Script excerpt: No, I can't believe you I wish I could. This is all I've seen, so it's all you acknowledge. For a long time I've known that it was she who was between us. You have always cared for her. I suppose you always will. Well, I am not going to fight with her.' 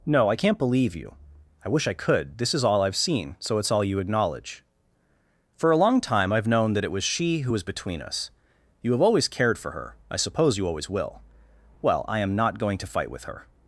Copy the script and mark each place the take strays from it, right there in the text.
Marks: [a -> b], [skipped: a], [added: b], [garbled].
No, I can't believe you I wish I could. This is all I've seen, so it's all you acknowledge. For a long time I've known that it was she who was between us. You have always cared for her. I suppose you always will. Well, I am not going to fight with her.'